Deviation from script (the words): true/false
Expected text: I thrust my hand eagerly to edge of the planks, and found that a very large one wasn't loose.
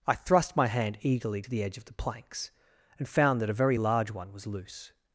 true